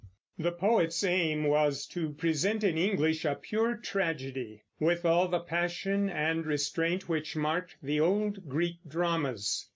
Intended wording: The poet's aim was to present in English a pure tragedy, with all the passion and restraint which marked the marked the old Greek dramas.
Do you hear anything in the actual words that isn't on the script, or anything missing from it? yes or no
yes